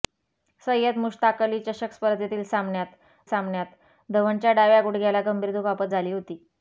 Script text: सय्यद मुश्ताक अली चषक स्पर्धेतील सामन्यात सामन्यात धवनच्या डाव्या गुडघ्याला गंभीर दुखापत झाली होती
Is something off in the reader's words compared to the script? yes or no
no